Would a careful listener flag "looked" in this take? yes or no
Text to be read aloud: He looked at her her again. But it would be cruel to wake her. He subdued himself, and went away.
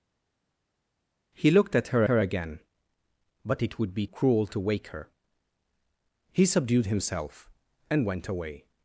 no